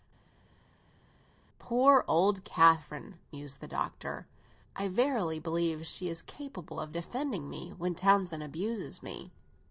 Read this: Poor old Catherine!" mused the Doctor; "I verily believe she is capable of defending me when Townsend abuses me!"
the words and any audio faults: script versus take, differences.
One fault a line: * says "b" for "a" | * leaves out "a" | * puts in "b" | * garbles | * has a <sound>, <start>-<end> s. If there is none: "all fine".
all fine